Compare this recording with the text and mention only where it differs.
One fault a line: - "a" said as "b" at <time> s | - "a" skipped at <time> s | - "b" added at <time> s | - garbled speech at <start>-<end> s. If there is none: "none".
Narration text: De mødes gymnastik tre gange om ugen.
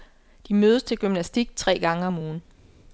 - "til" added at 0.8 s